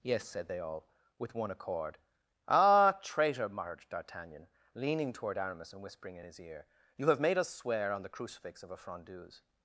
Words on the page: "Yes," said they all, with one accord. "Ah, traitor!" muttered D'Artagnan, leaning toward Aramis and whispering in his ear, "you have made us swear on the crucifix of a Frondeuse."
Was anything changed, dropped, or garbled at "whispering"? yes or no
no